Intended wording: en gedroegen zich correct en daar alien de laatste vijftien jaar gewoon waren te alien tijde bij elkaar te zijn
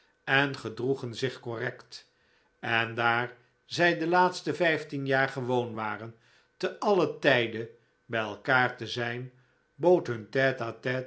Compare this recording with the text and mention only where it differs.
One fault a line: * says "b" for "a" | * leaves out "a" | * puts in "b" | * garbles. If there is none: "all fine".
* says "zij" for "alien"